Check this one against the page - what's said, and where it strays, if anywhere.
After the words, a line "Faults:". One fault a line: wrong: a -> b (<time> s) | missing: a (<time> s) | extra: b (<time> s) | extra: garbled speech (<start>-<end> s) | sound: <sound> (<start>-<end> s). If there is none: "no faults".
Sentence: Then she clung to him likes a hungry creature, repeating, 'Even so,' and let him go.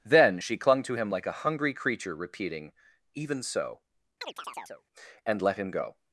Then she clung to him like a hungry creature, repeating, 'Even so,' and let him go.
Faults:
wrong: likes -> like (1.1 s)
sound: chirp (4.2-4.8 s)